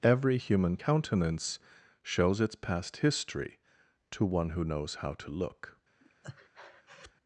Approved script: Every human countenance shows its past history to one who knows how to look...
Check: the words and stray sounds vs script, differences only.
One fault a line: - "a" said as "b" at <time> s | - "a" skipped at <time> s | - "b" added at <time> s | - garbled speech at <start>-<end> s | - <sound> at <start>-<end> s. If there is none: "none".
- breath at 6.0-7.1 s